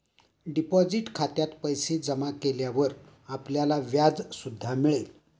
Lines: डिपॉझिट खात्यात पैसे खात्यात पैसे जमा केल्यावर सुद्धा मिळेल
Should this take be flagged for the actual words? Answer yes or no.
yes